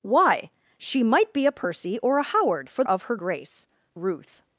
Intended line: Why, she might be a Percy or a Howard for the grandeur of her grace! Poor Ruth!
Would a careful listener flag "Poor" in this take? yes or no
yes